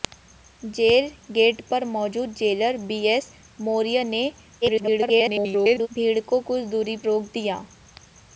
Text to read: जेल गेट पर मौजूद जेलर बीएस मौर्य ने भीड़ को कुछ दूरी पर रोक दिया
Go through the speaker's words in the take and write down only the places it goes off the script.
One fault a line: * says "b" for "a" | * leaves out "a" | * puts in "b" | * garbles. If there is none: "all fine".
* garbles
* leaves out "पर"